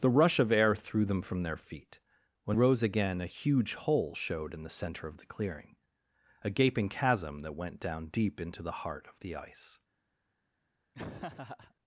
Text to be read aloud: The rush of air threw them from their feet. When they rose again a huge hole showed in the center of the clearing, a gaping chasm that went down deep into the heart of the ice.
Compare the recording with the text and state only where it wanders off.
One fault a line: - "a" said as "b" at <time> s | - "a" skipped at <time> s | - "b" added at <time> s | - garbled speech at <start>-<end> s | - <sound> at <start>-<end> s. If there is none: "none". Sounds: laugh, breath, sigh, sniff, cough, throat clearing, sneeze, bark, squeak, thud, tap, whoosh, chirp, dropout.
- "they" skipped at 2.6 s
- laugh at 10.9-11.7 s